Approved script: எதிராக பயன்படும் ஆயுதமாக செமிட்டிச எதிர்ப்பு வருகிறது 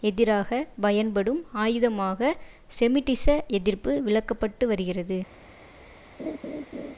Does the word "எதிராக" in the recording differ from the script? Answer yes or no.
no